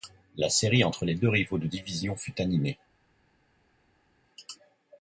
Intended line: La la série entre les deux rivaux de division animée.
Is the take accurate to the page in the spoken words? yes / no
no